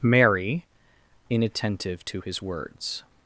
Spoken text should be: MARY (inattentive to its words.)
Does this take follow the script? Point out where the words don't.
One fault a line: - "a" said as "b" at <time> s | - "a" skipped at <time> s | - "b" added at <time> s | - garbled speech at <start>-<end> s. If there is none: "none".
- "its" said as "his" at 2.2 s